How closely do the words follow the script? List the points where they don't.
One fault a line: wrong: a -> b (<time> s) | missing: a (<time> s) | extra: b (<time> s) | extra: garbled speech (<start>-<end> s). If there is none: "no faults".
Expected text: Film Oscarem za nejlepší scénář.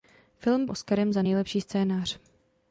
no faults